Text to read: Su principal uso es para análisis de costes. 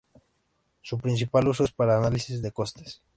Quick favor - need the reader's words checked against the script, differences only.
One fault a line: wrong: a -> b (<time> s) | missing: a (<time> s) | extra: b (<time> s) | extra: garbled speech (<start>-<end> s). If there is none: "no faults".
no faults